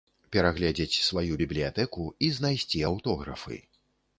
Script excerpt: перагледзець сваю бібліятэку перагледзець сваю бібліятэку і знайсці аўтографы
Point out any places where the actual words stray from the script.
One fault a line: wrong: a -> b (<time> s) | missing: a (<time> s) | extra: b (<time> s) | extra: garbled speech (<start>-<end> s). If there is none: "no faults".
missing: перагледзець сваю бібліятэку (2.1 s)